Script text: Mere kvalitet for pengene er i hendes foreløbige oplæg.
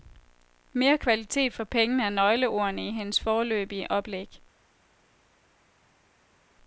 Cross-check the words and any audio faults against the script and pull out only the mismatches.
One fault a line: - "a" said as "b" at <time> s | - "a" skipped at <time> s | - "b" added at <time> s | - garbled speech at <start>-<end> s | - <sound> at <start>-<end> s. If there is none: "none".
- "nøgleordene" added at 2.1 s